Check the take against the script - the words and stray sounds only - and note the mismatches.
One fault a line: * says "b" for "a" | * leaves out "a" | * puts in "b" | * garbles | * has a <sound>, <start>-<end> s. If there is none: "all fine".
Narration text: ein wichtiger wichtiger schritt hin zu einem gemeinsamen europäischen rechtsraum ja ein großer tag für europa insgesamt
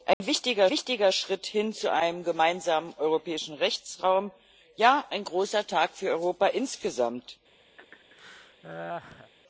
* has a dropout, 0.1-0.2 s
* has a laugh, 7.8-9.3 s